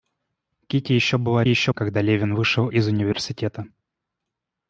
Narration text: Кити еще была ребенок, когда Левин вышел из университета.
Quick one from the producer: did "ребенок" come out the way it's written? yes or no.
no